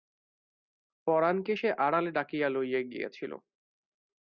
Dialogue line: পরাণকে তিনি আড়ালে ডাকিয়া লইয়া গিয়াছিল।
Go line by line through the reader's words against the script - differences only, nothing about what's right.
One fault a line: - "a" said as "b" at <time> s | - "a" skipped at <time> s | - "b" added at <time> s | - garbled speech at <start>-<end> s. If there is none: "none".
- "তিনি" said as "সে" at 1.5 s